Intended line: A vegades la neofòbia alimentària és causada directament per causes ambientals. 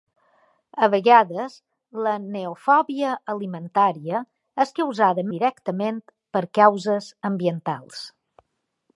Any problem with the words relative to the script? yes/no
no